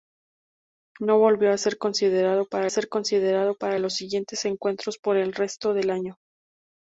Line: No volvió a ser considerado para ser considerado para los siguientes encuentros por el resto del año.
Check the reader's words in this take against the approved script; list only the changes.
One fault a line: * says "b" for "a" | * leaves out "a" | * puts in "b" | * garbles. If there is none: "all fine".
all fine